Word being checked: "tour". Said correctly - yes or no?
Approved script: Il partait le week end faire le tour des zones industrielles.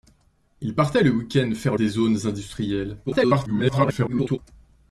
no